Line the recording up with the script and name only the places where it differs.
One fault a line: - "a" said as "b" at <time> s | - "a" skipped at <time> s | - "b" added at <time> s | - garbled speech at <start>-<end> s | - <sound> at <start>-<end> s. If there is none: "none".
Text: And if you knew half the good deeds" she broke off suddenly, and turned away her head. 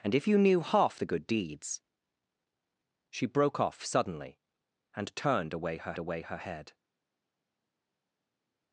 - "away her" added at 6.0 s